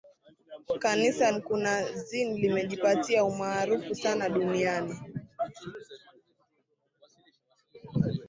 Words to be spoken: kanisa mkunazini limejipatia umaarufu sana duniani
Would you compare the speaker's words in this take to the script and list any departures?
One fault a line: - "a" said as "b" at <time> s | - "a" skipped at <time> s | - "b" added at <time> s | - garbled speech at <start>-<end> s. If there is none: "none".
none